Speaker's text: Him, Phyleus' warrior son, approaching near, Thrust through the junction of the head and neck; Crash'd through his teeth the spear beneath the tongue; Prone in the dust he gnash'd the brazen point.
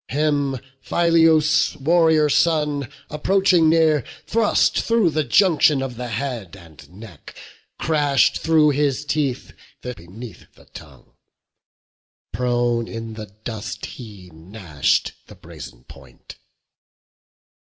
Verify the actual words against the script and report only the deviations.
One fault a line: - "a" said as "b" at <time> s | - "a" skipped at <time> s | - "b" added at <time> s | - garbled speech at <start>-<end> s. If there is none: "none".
- "spear" skipped at 9.9 s